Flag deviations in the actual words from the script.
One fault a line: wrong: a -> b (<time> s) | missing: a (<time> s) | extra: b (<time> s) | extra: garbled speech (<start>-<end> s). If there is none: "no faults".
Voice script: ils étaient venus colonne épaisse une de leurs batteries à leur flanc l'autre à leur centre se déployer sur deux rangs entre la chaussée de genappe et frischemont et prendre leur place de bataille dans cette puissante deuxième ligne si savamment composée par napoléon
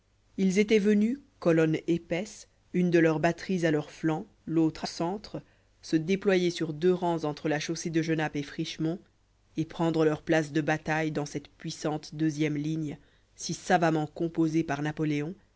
missing: leur (4.9 s)